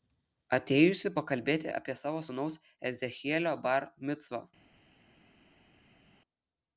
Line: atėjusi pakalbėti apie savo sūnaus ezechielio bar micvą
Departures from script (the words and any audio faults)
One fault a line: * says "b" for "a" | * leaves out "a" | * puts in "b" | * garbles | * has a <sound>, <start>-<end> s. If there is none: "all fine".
all fine